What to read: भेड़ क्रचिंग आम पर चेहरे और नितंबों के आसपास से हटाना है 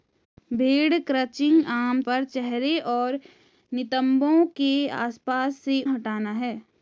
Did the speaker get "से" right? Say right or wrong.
right